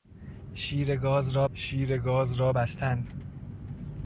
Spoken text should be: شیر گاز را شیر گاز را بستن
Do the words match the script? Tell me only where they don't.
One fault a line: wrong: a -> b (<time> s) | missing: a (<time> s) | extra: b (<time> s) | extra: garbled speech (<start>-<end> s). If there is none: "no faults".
no faults